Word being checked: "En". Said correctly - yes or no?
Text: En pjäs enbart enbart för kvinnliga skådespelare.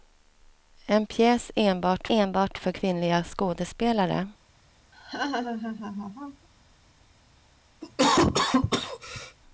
yes